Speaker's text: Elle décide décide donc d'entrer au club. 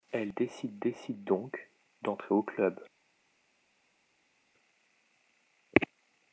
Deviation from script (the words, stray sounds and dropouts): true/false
false